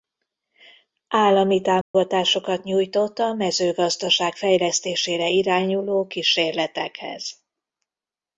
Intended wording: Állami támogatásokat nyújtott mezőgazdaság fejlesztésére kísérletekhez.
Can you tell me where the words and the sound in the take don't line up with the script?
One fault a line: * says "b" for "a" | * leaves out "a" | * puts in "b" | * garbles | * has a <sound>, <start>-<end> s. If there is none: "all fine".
* has a dropout, 1.8-1.9 s
* puts in "a"
* puts in "irányuló"